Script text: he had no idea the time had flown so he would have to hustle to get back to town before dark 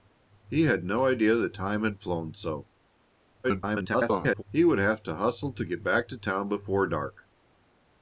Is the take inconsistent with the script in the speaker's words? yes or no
yes